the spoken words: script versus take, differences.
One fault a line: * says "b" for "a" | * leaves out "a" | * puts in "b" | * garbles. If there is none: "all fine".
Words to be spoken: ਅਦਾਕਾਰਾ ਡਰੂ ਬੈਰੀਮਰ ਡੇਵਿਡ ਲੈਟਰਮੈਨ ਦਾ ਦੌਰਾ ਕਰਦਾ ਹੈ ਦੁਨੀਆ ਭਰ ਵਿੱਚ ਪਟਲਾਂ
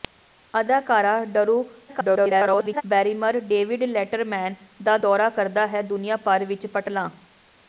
* garbles